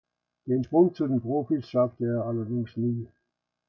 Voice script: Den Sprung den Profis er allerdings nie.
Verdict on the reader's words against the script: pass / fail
fail